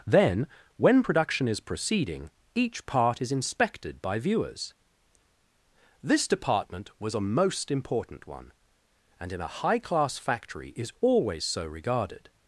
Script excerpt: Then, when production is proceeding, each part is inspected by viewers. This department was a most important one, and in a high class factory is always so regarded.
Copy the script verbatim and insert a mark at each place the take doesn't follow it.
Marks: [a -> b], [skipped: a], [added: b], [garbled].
Then, when production is proceeding, each part is inspected by viewers. This department was a most important one, and in a high class factory is always so regarded.